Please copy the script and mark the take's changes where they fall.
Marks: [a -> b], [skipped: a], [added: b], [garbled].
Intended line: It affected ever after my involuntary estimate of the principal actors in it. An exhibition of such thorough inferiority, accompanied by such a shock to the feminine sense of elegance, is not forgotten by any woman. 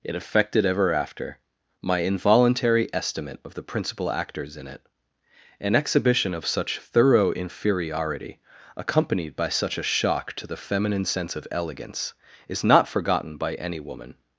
It affected ever after my involuntary estimate of the principal actors in it. An exhibition of such thorough inferiority, accompanied by such a shock to the feminine sense of elegance, is not forgotten by any woman.